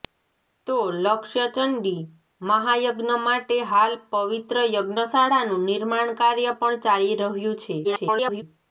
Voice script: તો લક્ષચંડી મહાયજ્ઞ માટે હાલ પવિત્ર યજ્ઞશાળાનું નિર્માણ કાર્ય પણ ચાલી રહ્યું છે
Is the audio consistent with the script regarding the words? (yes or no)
no